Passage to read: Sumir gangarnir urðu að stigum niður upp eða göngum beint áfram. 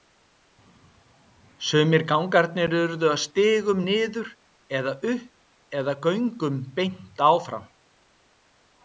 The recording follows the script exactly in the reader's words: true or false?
false